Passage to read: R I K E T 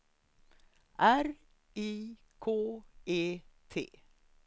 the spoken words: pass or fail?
pass